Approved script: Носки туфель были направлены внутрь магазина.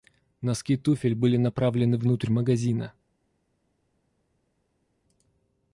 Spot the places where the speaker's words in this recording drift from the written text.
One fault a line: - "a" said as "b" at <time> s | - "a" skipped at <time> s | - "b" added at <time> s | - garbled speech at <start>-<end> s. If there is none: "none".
none